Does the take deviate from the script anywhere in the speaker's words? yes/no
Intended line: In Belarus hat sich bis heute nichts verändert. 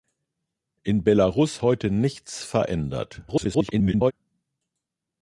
yes